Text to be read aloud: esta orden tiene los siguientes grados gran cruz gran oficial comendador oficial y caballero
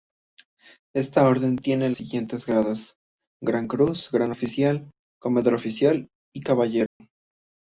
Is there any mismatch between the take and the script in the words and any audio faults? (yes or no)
yes